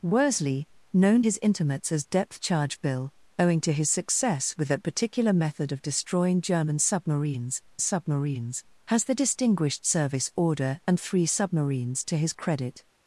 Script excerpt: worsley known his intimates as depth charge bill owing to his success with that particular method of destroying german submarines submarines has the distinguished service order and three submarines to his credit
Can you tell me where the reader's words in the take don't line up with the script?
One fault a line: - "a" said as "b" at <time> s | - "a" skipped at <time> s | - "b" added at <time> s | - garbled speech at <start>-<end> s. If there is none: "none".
none